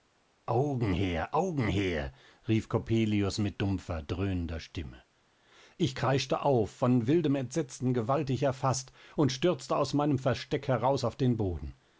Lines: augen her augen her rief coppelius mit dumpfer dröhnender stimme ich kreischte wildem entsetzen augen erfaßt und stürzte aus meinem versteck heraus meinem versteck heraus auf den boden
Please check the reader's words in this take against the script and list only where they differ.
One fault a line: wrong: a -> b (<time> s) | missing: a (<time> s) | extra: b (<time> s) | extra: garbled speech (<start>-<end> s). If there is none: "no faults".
extra: auf von (6.4 s)
wrong: augen -> gewaltig (7.9 s)
missing: meinem versteck heraus (11.0 s)